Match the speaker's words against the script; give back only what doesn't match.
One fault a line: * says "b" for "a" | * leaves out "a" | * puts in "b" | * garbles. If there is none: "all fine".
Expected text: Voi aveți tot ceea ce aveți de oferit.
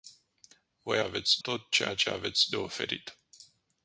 all fine